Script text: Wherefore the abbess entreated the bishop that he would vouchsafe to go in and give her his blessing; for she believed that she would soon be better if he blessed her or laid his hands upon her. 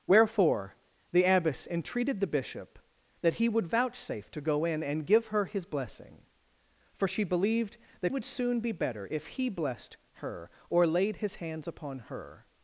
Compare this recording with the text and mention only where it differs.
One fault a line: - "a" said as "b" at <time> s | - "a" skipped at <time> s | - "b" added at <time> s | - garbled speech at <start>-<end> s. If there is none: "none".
- "she" skipped at 8.1 s